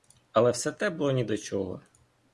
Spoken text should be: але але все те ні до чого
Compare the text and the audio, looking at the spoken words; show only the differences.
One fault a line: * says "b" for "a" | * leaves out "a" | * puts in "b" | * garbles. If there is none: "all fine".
* leaves out "але"
* puts in "було"